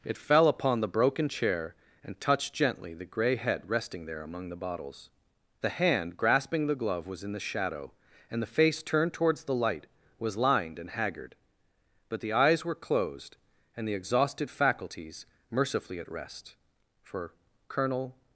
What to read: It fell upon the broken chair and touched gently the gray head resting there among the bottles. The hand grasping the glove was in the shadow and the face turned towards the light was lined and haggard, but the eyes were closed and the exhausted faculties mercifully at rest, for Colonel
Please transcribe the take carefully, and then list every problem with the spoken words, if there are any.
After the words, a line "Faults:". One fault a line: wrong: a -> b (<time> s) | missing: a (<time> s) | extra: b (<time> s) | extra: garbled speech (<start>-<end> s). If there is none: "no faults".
It fell upon the broken chair and touched gently the gray head resting there among the bottles. The hand grasping the glove was in the shadow and the face turned towards the light was lined and haggard, but the eyes were closed and the exhausted faculties mercifully at rest, for Colonel
Faults:
no faults